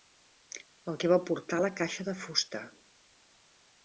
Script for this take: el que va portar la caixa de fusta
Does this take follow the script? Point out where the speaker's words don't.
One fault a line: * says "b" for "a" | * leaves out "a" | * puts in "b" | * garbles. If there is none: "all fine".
all fine